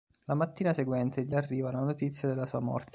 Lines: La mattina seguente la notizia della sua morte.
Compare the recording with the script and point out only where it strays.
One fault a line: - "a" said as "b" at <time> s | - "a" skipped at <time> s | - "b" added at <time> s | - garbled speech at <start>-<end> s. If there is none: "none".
- "gli arriva" added at 1.2 s